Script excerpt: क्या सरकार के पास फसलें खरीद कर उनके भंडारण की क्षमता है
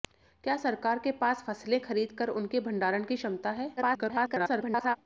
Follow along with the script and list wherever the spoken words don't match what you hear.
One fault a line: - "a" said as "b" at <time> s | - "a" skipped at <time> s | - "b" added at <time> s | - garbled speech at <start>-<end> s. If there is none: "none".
- garbled speech at 3.8-5.0 s